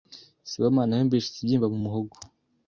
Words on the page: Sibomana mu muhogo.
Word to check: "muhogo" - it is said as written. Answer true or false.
true